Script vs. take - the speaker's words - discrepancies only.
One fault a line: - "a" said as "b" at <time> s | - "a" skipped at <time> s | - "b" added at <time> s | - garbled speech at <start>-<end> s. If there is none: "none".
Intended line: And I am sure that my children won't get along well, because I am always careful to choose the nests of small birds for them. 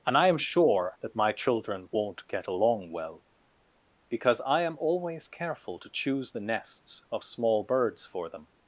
none